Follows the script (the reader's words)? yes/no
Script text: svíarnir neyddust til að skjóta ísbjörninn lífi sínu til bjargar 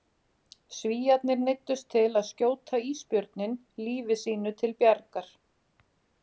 yes